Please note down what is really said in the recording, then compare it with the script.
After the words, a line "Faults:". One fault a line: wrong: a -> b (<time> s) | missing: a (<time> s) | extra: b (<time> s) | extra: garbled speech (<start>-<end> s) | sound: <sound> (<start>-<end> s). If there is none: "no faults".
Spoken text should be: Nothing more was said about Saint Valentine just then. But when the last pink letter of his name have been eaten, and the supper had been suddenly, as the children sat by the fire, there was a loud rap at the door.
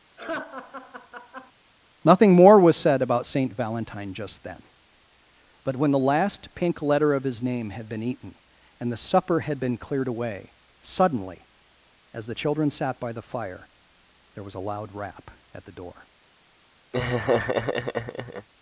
Nothing more was said about Saint Valentine just then. But when the last pink letter of his name had been eaten, and the supper had been cleared away, suddenly, as the children sat by the fire, there was a loud rap at the door.
Faults:
sound: laugh (0.2-1.5 s)
wrong: have -> had (7.7 s)
extra: cleared away (9.8 s)
sound: laugh (16.9-18.5 s)